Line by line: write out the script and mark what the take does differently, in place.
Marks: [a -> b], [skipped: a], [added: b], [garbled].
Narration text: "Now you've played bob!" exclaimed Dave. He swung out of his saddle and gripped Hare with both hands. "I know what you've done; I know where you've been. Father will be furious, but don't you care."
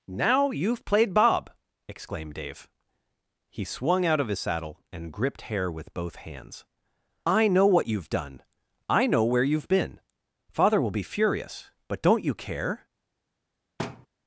"Now you've played bob!" exclaimed Dave. He swung out of his saddle and gripped Hare with both hands. "I know what you've done; I know where you've been. Father will be furious, but don't you care."